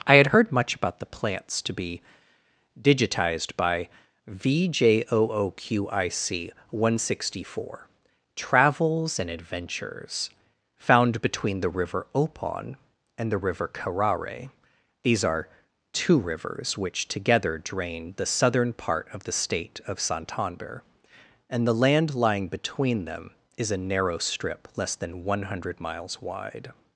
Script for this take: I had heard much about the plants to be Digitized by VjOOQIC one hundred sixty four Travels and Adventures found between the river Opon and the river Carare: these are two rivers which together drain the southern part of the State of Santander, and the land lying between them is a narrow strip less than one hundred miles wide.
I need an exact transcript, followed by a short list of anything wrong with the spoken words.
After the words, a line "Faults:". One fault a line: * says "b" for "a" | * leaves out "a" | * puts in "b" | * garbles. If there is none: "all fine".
I had heard much about the plants to be Digitized by VjOOQIC one hundred sixty four Travels and Adventures found between the river Opon and the river Carare: these are two rivers which together drain the southern part of the State of Santander, and the land lying between them is a narrow strip less than one hundred miles wide.
Faults:
all fine